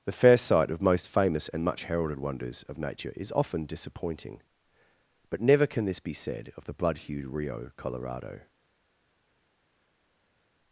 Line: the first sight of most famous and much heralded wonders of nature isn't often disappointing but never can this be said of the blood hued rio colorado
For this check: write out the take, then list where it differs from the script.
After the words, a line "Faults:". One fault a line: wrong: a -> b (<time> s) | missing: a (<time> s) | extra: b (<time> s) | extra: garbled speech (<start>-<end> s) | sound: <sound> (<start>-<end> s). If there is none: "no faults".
the first sight of most famous and much heralded wonders of nature is often disappointing but never can this be said of the blood hued rio colorado
Faults:
wrong: isn't -> is (3.2 s)